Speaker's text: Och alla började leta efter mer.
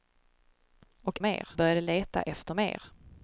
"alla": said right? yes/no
no